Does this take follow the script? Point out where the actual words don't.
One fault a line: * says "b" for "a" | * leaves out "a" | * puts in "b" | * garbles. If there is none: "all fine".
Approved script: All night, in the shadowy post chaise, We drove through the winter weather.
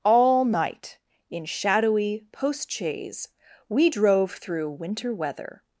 * leaves out "the"
* leaves out "the"